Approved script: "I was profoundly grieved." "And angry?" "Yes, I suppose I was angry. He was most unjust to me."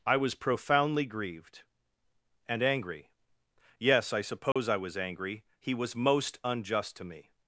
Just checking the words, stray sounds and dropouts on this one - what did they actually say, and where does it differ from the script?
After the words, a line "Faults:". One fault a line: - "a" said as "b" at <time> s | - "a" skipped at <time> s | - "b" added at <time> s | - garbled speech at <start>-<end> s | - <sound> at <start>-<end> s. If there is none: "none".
"I was profoundly grieved." "And angry?" "Yes, I suppose I was angry. He was most unjust to me."
Faults:
- dropout at 4.5-4.6 s